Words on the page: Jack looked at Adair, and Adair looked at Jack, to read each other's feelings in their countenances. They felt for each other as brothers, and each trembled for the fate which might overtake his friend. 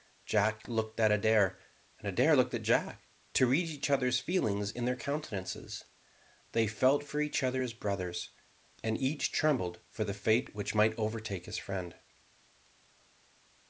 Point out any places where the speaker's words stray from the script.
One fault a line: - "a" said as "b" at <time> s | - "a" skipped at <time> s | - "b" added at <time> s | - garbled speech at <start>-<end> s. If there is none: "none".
none